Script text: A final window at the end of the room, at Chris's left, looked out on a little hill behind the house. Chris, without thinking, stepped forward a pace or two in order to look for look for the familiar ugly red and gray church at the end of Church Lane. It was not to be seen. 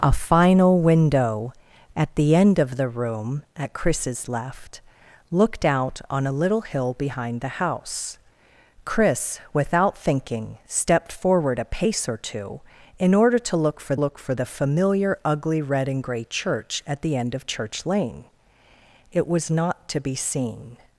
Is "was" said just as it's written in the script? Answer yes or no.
yes